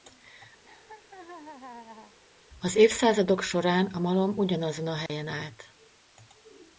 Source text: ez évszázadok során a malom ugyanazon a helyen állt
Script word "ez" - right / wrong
wrong